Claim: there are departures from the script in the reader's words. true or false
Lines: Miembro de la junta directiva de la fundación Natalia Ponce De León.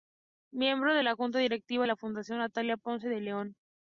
true